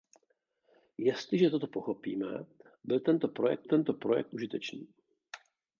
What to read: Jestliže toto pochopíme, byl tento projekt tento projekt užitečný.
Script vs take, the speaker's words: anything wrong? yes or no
no